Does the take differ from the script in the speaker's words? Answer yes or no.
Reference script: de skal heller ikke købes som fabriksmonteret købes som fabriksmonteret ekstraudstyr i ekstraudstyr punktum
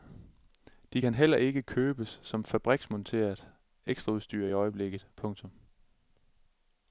yes